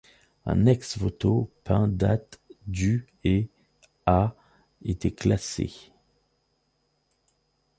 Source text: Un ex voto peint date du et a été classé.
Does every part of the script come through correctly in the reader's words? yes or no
yes